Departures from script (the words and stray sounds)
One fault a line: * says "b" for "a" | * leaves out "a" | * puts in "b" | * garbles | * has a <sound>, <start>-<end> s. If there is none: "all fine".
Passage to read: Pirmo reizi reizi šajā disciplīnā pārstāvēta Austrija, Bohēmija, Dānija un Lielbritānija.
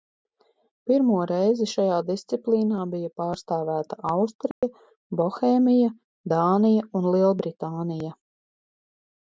* leaves out "reizi"
* puts in "bija"
* has a dropout, 4.5-4.6 s